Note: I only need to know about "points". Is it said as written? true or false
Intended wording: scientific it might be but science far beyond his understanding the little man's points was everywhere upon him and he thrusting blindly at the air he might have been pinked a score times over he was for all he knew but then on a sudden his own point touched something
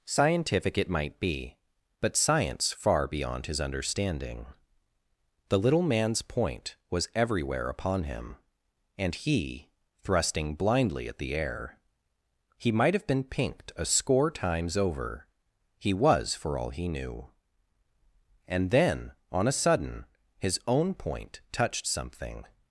false